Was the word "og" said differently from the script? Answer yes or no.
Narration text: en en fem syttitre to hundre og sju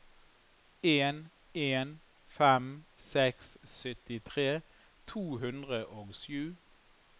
no